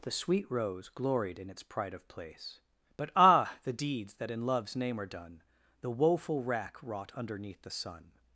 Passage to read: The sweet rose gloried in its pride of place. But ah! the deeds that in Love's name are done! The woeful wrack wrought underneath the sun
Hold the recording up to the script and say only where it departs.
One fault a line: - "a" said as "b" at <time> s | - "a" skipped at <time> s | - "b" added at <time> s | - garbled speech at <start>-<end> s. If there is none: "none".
none